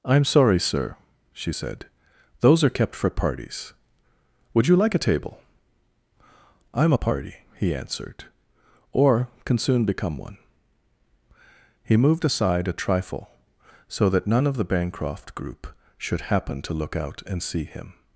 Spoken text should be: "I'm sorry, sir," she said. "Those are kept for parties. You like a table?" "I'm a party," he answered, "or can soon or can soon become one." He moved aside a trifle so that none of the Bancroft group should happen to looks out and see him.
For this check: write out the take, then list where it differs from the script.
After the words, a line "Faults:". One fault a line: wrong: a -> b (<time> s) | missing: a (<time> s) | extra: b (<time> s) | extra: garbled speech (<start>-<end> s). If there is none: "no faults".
"I'm sorry, sir," she said. "Those are kept for parties. Would you like a table?" "I'm a party," he answered, "or can soon become one." He moved aside a trifle so that none of the Bancroft group should happen to look out and see him.
Faults:
extra: Would (4.5 s)
missing: or can soon (9.9 s)
wrong: looks -> look (16.7 s)